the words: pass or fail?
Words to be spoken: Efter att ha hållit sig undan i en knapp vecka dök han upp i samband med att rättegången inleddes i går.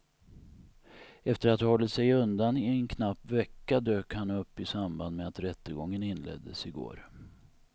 pass